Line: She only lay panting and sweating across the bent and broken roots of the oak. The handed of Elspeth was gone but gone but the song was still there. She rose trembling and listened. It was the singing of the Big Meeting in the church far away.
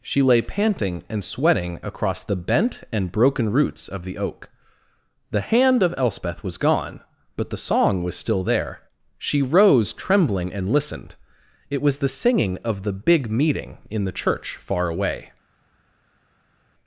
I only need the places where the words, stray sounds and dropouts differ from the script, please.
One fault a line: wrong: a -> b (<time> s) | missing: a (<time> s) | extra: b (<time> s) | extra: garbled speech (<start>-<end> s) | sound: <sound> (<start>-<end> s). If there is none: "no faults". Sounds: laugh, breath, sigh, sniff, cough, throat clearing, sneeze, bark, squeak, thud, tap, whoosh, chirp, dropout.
missing: only (0.2 s)
wrong: handed -> hand (5.4 s)
missing: gone but (7.5 s)